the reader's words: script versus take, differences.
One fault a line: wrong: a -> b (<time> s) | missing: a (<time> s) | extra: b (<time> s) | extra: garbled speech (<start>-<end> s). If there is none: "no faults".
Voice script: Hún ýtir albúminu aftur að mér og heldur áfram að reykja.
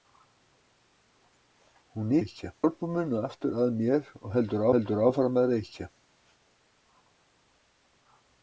wrong: ýtir -> reykja (2.2 s)
extra: heldur (4.8 s)